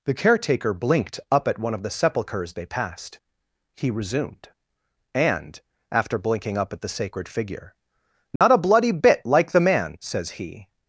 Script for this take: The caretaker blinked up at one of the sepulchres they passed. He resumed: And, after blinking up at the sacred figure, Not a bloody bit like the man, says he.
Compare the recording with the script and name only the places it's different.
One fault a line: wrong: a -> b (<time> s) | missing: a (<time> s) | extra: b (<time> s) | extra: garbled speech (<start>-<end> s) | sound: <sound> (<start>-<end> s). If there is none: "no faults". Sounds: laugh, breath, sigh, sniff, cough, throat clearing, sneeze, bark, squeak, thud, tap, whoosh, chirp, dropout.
sound: dropout (8.4-8.4 s)